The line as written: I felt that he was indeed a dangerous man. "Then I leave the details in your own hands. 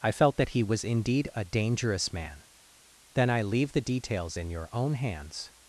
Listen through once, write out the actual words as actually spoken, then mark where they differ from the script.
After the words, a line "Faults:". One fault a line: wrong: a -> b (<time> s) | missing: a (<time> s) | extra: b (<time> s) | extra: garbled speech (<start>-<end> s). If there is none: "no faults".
I felt that he was indeed a dangerous man. "Then I leave the details in your own hands.
Faults:
no faults